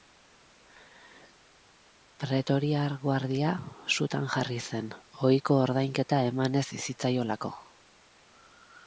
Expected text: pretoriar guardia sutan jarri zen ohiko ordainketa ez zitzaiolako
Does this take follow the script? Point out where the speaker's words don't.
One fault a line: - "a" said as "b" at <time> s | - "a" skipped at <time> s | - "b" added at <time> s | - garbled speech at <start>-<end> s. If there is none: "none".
- "eman" added at 6.3 s